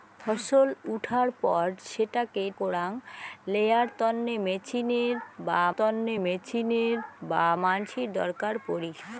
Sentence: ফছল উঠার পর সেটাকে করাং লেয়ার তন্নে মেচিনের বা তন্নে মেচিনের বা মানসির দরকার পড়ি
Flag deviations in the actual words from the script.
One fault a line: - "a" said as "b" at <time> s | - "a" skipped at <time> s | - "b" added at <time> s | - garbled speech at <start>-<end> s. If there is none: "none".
none